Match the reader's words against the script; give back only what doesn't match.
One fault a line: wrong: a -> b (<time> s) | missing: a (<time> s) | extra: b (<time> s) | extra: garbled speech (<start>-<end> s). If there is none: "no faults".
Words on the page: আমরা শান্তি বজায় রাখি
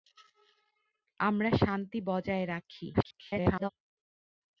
extra: garbled speech (2.9-3.7 s)